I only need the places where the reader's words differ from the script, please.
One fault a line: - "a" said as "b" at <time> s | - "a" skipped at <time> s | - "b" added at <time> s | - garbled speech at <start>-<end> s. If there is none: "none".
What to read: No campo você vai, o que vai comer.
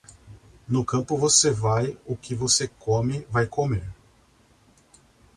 - "você come" added at 2.3 s